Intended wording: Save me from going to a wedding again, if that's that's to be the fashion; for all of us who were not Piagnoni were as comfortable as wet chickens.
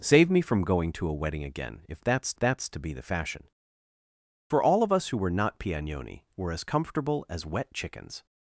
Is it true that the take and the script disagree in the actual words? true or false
false